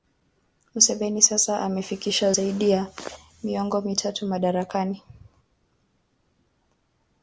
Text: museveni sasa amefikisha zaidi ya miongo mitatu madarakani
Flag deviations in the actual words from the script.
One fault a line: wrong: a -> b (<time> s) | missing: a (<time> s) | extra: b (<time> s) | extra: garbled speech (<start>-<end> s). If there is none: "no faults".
no faults